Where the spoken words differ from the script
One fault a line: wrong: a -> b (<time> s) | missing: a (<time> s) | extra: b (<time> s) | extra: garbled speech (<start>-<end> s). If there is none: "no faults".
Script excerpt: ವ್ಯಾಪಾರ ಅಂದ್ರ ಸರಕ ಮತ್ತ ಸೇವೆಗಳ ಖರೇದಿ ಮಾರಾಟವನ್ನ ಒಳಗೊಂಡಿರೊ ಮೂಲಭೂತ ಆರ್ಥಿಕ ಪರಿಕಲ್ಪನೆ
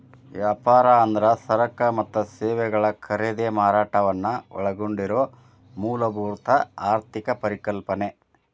no faults